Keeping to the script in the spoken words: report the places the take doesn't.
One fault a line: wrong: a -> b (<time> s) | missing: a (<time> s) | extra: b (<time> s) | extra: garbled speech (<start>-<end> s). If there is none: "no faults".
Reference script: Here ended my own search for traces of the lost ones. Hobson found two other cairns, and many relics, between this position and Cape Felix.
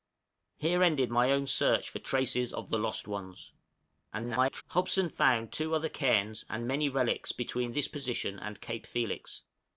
extra: garbled speech (4.1-4.6 s)